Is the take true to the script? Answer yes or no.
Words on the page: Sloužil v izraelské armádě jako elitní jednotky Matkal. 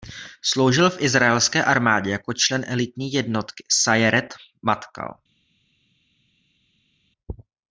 no